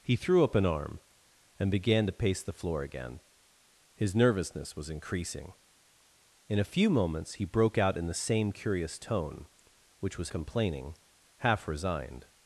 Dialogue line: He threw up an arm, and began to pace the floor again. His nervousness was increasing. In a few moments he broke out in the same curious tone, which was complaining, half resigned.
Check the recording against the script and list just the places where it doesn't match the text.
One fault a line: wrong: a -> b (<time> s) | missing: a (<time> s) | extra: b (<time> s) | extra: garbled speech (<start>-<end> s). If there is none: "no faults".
no faults